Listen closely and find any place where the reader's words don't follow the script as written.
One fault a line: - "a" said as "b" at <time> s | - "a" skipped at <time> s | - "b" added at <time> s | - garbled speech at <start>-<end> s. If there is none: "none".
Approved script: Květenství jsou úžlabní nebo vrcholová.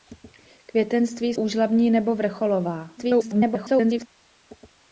- "jsou" skipped at 1.3 s
- garbled speech at 3.0-4.1 s